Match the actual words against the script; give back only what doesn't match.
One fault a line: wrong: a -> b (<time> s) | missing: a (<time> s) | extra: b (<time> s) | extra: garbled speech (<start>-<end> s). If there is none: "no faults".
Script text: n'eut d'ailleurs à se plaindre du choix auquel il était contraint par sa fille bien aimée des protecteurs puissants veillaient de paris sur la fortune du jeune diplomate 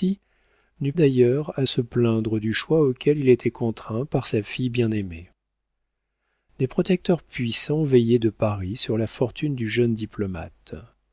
no faults